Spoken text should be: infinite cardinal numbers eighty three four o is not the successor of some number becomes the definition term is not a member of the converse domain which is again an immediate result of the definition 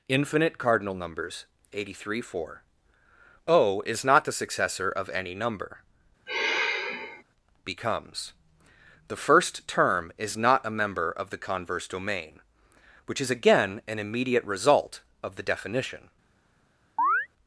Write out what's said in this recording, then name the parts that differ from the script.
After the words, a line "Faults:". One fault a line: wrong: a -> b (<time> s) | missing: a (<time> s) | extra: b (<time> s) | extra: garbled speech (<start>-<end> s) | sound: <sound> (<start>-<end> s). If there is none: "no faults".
infinite cardinal numbers eighty three four o is not the successor of any number becomes the first term is not a member of the converse domain which is again an immediate result of the definition
Faults:
wrong: some -> any (5.1 s)
sound: sigh (6.3-7.2 s)
wrong: definition -> first (9.2 s)
sound: chirp (17.0-17.3 s)